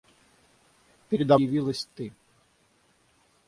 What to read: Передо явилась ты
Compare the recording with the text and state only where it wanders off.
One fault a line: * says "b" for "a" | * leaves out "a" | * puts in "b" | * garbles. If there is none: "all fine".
all fine